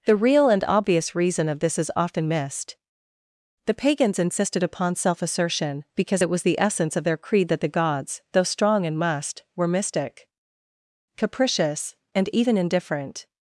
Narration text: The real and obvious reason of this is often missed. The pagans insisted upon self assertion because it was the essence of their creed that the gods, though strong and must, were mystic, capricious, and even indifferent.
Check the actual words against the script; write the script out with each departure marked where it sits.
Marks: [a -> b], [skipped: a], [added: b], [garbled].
The real and obvious reason of this is often missed. The pagans insisted upon self assertion because it was the essence of their creed that the gods, though strong and must, were mystic, capricious, and even indifferent.